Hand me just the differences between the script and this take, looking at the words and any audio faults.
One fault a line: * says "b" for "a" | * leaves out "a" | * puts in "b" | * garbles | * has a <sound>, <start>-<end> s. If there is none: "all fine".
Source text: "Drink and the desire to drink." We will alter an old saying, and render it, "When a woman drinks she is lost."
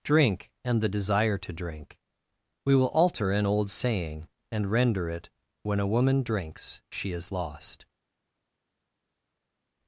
all fine